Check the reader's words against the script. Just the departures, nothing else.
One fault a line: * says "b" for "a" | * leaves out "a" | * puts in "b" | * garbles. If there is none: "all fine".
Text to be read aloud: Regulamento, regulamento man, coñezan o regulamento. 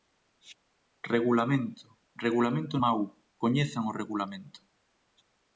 all fine